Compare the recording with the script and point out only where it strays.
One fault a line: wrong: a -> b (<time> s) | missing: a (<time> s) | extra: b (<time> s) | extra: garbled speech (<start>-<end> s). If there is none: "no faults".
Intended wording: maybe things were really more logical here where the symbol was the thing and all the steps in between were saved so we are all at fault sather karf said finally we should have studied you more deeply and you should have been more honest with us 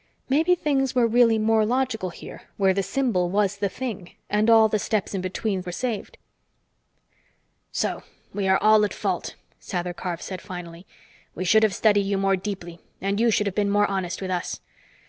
no faults